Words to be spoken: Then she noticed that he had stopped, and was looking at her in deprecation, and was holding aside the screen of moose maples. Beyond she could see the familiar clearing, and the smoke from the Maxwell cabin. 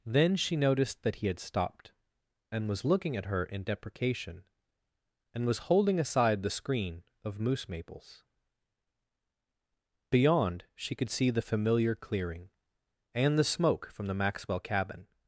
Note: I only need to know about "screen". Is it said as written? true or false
true